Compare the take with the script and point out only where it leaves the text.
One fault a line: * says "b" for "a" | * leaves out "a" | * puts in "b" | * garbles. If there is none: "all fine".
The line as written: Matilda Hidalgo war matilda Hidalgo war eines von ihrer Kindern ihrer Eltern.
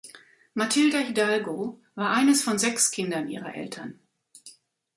* leaves out "matilda Hidalgo war"
* says "sechs" for "ihrer"